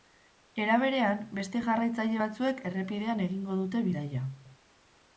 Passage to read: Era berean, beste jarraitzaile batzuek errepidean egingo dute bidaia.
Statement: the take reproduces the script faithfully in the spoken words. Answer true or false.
true